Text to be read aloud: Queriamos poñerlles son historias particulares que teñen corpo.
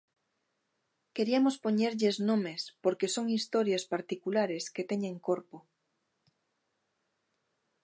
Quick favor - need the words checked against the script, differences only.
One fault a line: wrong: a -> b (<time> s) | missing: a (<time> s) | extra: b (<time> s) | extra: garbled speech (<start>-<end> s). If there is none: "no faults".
extra: nomes porque (2.3 s)